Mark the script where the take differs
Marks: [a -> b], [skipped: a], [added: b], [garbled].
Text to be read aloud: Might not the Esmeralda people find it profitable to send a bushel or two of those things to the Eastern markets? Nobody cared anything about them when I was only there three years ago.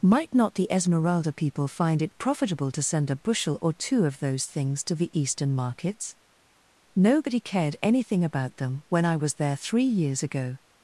Might not the Esmeralda people find it profitable to send a bushel or two of those things to the Eastern markets? Nobody cared anything about them when I was [skipped: only] there three years ago.